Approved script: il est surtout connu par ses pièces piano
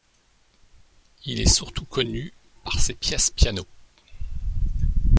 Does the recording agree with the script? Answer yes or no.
yes